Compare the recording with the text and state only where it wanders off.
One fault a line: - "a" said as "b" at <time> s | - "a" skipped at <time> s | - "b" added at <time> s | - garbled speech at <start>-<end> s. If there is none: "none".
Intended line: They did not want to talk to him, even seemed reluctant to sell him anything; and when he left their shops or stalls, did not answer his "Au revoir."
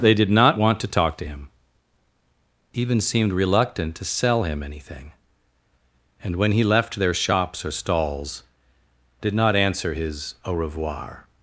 none